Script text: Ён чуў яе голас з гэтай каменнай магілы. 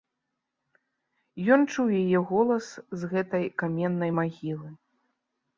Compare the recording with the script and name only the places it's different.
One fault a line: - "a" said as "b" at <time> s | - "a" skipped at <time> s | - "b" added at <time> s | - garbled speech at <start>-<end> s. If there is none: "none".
none